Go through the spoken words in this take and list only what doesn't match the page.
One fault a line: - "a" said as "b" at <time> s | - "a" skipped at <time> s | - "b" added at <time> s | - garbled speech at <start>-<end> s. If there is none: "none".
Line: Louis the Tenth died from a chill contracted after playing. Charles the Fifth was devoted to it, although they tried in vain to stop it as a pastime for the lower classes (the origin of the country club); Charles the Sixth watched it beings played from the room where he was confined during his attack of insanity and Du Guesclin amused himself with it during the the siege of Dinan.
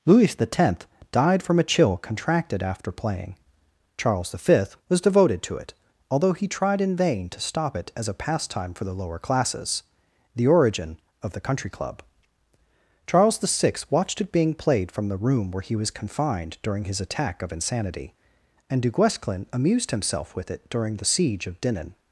- "they" said as "he" at 6.3 s
- "beings" said as "being" at 14.3 s
- "the" skipped at 21.1 s